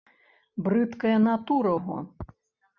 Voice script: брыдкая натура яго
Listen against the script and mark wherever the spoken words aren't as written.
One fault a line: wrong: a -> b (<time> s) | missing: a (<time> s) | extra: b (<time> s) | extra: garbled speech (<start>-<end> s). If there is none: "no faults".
no faults